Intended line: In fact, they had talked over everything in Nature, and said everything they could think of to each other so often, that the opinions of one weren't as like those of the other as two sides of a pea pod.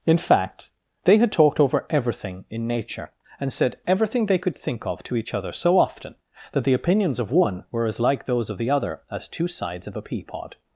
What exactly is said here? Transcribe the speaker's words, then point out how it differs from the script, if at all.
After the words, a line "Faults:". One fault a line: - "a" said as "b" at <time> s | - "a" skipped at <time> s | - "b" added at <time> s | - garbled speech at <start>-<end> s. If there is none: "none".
In fact, they had talked over everything in Nature, and said everything they could think of to each other so often, that the opinions of one were as like those of the other as two sides of a pea pod.
Faults:
- "weren't" said as "were" at 7.7 s